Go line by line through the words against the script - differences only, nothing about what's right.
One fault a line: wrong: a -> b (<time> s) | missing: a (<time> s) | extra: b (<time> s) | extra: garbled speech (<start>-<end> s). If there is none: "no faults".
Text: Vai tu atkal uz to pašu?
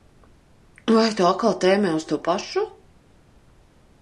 extra: tēmē (1.6 s)